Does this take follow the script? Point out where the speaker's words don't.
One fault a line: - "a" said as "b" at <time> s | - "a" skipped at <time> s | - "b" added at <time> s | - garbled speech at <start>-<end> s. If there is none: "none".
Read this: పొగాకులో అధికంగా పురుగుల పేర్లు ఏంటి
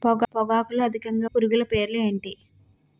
none